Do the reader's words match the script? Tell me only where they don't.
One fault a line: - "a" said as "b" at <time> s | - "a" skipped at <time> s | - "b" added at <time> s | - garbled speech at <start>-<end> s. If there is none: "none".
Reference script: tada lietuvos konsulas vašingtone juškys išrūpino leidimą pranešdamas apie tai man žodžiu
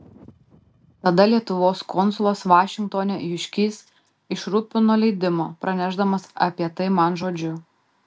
none